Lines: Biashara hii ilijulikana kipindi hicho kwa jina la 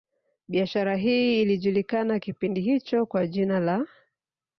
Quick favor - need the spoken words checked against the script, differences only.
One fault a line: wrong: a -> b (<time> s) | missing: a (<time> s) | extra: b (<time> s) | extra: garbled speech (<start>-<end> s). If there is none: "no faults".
no faults